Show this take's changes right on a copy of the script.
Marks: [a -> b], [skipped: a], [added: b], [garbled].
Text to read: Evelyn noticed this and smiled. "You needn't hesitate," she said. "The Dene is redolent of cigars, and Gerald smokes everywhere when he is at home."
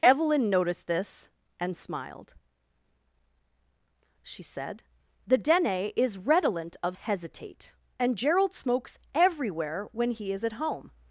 Evelyn noticed this and smiled. [skipped: "You needn't hesitate,"] she said. "The Dene is redolent of [cigars, -> hesitate] and Gerald smokes everywhere when he is at home."